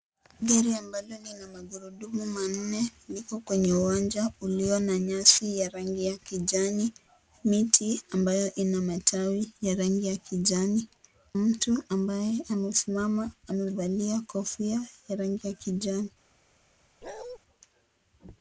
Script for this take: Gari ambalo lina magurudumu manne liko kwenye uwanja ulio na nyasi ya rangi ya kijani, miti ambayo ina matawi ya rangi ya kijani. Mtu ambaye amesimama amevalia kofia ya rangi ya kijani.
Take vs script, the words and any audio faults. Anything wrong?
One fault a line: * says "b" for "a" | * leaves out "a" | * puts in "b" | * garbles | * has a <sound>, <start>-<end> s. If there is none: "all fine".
* has a bark, 17.0-17.4 s